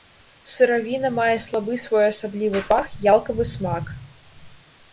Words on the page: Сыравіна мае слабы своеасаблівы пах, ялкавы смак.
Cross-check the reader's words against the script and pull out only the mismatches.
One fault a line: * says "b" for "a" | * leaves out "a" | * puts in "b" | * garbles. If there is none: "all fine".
all fine